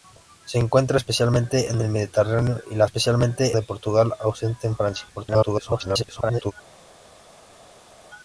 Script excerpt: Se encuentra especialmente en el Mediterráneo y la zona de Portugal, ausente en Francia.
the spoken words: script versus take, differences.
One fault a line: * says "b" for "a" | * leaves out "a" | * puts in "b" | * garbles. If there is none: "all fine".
* says "especialmente" for "zona"
* garbles